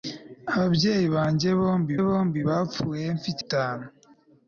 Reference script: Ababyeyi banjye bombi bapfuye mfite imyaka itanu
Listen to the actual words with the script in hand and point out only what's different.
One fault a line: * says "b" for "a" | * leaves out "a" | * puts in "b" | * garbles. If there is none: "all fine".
* puts in "bombi"
* leaves out "imyaka"